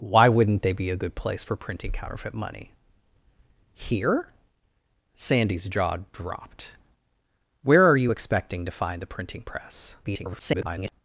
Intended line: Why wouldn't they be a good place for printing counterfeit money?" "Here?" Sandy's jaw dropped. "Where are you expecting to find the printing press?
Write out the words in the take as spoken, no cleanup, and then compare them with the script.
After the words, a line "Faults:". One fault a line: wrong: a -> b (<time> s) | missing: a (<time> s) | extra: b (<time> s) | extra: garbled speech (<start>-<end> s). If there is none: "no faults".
Why wouldn't they be a good place for printing counterfeit money?" "Here?" Sandy's jaw dropped. "Where are you expecting to find the printing press? [garbled]
Faults:
extra: garbled speech (10.0-10.9 s)